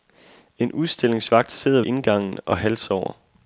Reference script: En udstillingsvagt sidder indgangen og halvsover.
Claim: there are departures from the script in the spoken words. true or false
false